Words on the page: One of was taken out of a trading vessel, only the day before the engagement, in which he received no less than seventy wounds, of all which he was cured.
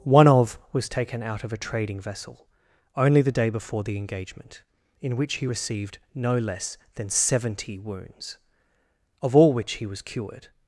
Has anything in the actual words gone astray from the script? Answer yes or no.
no